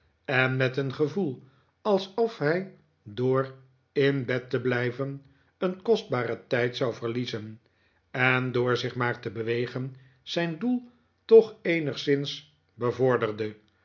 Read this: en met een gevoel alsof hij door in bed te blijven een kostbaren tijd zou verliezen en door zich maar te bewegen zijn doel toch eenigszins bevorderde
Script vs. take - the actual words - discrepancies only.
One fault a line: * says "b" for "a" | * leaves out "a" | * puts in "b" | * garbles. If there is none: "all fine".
all fine